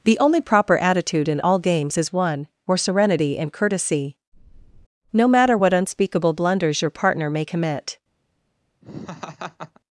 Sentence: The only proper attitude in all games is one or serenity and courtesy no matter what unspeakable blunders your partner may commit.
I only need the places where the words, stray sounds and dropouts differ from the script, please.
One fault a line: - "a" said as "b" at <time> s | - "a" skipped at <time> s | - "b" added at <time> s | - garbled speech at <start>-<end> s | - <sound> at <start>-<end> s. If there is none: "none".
- "or" said as "where" at 2.6 s
- laugh at 8.8-9.8 s